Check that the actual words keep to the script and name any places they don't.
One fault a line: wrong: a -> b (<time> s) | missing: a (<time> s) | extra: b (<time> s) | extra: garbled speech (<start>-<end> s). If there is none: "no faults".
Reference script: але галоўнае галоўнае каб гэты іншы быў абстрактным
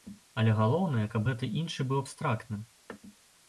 missing: галоўнае (1.0 s)